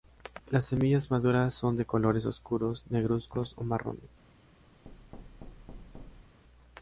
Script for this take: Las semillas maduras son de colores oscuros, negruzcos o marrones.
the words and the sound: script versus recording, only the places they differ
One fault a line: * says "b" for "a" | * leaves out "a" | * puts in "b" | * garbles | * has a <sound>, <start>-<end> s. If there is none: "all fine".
* has a thud, 4.9-6.4 s